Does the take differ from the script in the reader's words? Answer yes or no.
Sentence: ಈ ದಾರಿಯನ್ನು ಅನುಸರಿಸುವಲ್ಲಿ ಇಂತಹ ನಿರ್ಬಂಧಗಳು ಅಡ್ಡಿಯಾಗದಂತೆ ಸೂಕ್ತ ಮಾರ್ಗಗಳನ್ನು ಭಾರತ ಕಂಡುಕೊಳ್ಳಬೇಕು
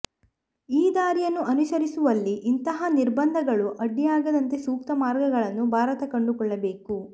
no